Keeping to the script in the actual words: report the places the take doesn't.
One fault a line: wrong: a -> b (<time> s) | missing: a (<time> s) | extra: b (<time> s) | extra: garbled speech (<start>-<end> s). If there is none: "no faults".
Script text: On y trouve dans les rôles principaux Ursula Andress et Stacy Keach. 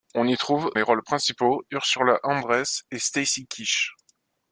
missing: dans (0.7 s)